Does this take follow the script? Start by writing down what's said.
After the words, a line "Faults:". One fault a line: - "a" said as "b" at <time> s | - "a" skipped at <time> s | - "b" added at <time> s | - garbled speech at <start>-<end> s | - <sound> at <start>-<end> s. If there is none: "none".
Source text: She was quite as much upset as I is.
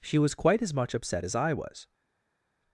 She was quite as much upset as I was.
Faults:
- "is" said as "was" at 1.5 s